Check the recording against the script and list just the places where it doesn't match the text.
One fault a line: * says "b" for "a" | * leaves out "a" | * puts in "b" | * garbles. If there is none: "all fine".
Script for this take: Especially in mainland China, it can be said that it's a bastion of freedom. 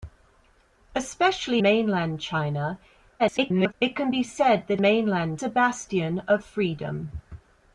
* leaves out "in"
* garbles
* says "mainland" for "it's"